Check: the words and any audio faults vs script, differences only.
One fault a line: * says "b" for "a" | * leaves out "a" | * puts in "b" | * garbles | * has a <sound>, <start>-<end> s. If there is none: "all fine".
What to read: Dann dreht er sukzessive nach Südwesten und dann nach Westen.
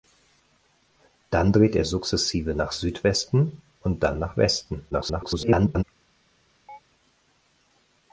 * garbles
* has a chirp, 6.7-6.8 s